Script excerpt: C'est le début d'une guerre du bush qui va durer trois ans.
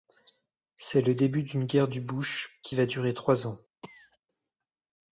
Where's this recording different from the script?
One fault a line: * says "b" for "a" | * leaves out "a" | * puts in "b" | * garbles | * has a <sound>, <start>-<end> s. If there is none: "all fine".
* has a cough, 3.8-4.2 s